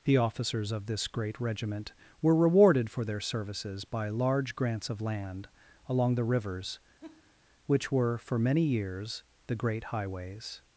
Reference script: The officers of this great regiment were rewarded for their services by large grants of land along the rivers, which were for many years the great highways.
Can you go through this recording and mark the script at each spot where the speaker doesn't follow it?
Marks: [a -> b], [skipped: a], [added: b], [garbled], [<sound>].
The officers of this great regiment were rewarded for their services by large grants of land along the rivers, [laugh] which were for many years the great highways.